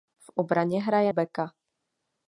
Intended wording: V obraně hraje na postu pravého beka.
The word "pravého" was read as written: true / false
false